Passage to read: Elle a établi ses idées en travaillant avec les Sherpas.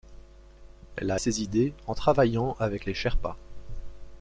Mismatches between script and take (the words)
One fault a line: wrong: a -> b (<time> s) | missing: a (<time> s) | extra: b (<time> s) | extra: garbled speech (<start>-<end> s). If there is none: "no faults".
missing: établi (1.2 s)